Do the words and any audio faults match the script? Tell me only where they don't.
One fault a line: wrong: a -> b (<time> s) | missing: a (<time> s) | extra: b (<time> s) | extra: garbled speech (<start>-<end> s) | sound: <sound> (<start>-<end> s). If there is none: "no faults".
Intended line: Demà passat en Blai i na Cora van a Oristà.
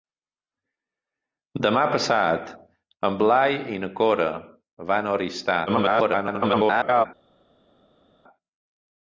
extra: garbled speech (5.7-7.1 s)